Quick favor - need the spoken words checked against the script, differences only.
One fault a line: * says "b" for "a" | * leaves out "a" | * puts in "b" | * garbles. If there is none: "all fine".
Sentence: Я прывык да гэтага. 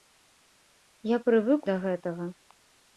all fine